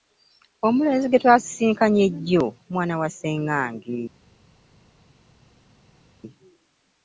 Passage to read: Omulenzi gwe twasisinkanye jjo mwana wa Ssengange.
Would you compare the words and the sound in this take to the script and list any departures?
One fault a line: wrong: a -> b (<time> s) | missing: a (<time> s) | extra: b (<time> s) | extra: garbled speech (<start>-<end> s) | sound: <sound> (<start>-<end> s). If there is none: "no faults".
no faults